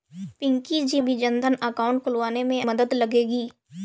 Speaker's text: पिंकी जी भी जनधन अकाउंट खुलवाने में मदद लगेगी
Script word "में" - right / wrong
right